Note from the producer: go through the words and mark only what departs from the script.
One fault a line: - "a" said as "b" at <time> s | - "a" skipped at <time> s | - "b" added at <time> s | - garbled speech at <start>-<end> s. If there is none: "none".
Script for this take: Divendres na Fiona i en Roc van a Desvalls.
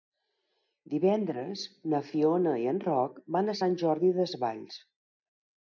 - "Sant Jordi" added at 3.6 s